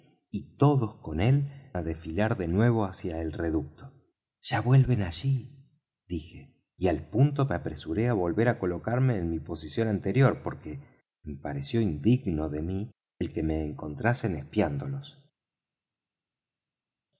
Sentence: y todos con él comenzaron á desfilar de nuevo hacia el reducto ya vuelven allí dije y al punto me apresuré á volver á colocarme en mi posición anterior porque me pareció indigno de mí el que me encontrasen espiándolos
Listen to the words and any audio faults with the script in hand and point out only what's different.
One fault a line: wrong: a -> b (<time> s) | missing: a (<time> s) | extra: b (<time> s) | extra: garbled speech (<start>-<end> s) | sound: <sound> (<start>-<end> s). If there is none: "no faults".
missing: comenzaron (1.5 s)